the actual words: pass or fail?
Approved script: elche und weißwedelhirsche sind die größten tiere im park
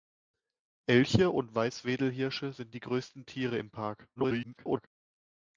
fail